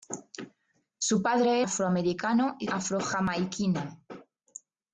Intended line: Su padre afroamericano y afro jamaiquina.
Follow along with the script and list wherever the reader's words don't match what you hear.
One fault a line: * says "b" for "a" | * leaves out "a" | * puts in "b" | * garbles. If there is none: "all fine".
all fine